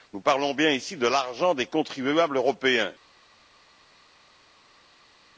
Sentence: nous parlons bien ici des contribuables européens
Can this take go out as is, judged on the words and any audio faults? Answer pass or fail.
fail